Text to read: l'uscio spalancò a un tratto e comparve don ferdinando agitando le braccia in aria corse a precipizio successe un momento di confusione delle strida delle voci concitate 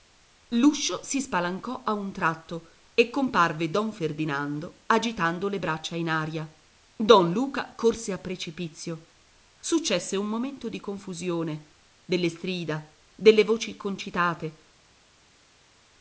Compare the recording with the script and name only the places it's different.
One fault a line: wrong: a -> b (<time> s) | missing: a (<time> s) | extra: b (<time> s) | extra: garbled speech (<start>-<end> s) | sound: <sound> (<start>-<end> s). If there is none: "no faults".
extra: si (1.0 s)
extra: don luca (6.9 s)